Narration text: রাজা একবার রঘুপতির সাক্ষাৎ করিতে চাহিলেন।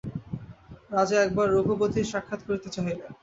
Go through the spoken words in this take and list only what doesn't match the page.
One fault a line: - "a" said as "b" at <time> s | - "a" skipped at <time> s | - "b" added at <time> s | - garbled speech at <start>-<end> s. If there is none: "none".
none